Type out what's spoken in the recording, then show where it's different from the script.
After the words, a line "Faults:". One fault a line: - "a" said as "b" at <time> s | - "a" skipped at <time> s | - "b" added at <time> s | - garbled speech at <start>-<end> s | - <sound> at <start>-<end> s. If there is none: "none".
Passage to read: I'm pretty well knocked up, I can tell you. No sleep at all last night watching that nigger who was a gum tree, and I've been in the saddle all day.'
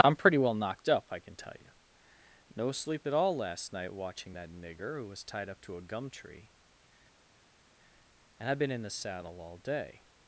I'm pretty well knocked up, I can tell you. No sleep at all last night watching that nigger who was tied up to a gum tree, and I've been in the saddle all day.'
Faults:
- "tied up to" added at 5.2 s